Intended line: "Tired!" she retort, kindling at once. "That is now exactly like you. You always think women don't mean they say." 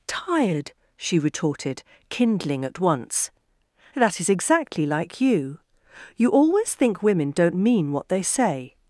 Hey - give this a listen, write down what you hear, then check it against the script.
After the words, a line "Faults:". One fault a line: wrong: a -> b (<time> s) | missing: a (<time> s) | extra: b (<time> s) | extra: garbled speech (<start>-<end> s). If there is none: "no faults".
"Tired!" she retorted, kindling at once. "That is exactly like you. You always think women don't mean what they say."
Faults:
wrong: retort -> retorted (1.2 s)
missing: now (4.3 s)
extra: what (7.9 s)